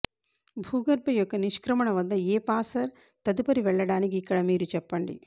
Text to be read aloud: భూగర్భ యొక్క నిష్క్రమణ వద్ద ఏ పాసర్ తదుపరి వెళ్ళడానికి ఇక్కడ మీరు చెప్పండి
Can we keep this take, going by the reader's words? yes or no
yes